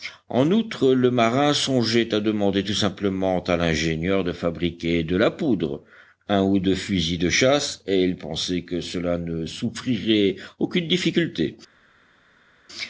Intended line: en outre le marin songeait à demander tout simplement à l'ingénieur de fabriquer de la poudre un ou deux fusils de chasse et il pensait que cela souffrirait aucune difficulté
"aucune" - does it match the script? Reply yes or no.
yes